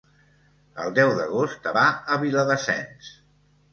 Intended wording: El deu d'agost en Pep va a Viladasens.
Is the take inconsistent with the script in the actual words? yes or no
yes